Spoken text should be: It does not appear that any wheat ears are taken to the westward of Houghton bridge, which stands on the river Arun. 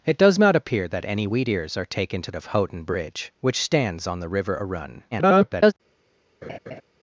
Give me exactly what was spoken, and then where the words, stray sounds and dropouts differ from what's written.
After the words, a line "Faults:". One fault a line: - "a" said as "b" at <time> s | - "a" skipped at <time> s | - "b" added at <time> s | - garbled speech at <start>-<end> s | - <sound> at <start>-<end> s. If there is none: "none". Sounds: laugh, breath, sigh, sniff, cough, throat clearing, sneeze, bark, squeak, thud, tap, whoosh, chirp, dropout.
It does not appear that any wheat ears are taken to of Houghton bridge, which stands on the river Arun. [garbled]
Faults:
- "the westward" skipped at 2.3 s
- garbled speech at 5.1-5.7 s
- laugh at 6.4-6.8 s